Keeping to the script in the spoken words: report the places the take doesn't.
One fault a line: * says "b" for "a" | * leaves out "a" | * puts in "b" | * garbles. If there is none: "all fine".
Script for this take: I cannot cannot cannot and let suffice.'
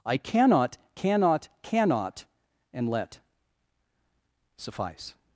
all fine